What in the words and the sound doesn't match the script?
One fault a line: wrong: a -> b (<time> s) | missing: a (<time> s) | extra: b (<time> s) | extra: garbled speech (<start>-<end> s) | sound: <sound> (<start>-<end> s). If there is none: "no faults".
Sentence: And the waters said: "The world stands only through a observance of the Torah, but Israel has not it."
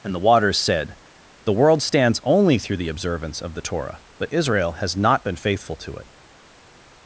wrong: a -> the (2.8 s)
extra: been faithful to (5.3 s)